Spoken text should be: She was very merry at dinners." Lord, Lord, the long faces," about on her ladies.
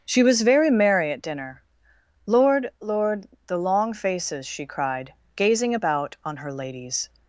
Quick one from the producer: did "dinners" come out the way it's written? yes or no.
no